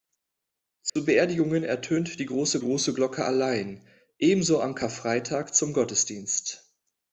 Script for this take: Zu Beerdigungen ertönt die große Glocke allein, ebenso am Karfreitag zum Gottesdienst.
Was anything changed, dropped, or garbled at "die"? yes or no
no